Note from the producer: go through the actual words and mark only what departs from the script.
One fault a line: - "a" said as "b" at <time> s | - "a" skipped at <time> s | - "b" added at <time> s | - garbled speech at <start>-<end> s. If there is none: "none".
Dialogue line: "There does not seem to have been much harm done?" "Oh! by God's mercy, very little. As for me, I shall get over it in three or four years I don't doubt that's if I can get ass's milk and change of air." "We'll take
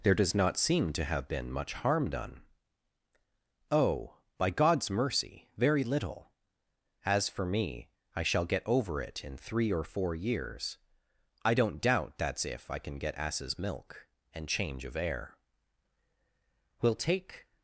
none